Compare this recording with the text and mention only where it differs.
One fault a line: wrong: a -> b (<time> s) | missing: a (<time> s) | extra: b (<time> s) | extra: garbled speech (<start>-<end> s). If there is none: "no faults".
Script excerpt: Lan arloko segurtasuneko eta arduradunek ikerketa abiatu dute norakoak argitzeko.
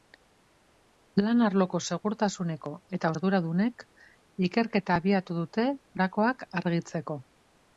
no faults